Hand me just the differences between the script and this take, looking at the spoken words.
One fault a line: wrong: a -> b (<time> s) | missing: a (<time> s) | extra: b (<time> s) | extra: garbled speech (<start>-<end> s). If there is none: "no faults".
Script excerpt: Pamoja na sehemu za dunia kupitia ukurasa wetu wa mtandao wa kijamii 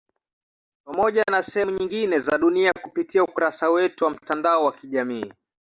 extra: nyingine (1.7 s)